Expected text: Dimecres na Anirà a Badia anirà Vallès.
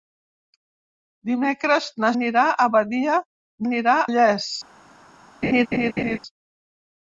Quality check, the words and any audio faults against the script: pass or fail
fail